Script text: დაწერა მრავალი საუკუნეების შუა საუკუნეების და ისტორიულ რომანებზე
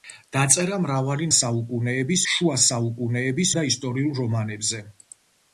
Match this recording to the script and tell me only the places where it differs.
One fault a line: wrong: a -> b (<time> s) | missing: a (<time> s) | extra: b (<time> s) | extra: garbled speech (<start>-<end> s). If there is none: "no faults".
no faults